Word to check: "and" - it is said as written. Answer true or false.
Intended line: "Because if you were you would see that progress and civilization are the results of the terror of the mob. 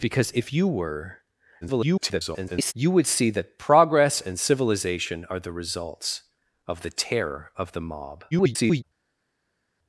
true